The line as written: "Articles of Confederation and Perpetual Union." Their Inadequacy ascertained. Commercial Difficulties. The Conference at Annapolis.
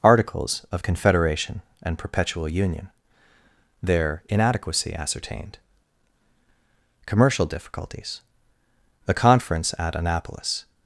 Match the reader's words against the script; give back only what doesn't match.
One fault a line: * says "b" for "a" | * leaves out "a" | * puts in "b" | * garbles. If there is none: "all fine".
all fine